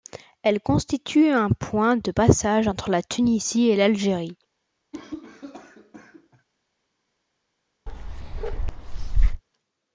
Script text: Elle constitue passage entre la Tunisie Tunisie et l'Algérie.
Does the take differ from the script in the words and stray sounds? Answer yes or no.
yes